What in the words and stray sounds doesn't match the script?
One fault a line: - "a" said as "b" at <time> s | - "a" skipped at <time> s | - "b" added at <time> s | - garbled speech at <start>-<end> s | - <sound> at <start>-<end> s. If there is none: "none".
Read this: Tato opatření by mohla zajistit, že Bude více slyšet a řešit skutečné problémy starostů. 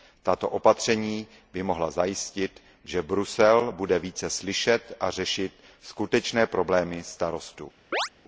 - "Brusel" added at 3.0 s
- chirp at 7.9-8.1 s